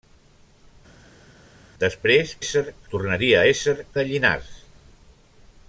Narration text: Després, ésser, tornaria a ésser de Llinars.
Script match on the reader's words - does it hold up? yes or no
yes